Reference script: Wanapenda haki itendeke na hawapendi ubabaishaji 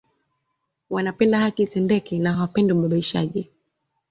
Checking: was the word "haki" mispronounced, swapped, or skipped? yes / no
no